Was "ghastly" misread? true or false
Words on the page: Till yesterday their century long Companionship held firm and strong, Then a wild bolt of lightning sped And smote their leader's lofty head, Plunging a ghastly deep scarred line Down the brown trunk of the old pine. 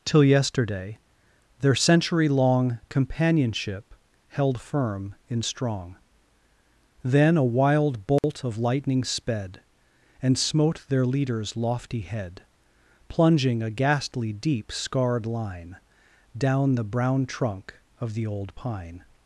false